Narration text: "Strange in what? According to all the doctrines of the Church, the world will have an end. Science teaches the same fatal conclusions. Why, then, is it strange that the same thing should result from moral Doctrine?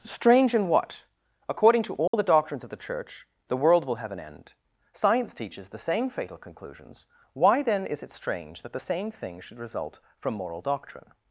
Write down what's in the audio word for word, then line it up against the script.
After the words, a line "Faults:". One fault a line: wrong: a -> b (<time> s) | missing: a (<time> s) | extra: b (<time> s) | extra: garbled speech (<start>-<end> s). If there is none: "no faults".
"Strange in what? According to all the doctrines of the Church, the world will have an end. Science teaches the same fatal conclusions. Why, then, is it strange that the same thing should result from moral Doctrine?
Faults:
no faults